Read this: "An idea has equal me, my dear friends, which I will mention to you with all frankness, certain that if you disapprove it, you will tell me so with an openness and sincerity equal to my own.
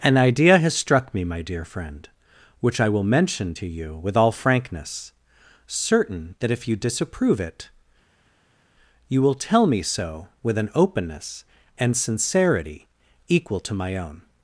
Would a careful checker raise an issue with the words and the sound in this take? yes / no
yes